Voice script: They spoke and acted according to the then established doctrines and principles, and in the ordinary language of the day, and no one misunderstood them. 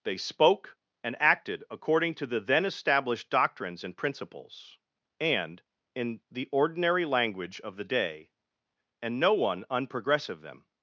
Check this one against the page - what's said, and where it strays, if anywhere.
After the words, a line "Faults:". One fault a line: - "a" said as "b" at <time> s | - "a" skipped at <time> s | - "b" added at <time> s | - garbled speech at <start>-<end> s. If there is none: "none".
They spoke and acted according to the then established doctrines and principles, and in the ordinary language of the day, and no one unprogressive them.
Faults:
- "misunderstood" said as "unprogressive" at 9.7 s